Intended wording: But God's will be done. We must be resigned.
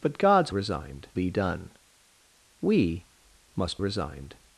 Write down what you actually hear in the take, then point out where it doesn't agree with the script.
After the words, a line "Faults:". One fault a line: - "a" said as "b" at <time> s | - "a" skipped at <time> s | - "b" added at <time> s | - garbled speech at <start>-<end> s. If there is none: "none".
But God's resigned be done. We must resigned.
Faults:
- "will" said as "resigned" at 0.5 s
- "be" skipped at 3.8 s